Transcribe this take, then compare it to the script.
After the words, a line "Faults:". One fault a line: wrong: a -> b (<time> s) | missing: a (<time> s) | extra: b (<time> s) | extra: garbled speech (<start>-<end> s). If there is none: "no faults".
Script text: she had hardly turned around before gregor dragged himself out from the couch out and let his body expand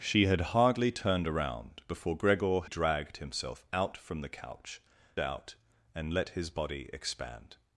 she had hardly turned around before gregor dragged himself out from the couch out and let his body expand
Faults:
no faults